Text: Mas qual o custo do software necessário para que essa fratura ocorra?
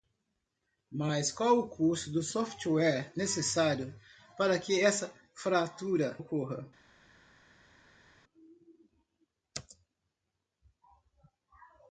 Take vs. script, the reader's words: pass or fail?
pass